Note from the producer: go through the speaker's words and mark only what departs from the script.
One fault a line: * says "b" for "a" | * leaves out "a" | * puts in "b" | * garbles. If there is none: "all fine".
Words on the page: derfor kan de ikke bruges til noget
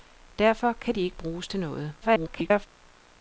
* garbles